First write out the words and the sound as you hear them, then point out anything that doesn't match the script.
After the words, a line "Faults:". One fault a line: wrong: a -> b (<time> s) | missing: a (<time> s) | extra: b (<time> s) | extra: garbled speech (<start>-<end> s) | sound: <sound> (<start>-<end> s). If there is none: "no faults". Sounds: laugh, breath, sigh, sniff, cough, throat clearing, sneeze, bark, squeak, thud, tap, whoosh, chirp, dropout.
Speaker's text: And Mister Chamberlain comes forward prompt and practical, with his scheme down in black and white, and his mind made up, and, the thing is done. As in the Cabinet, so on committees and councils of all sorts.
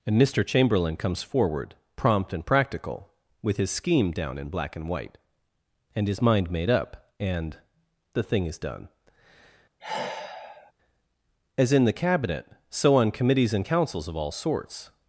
And Mister Chamberlain comes forward prompt and practical, with his scheme down in black and white, and his mind made up, and, the thing is done. As in the Cabinet, so on committees and councils of all sorts.
Faults:
sound: sigh (9.8-10.7 s)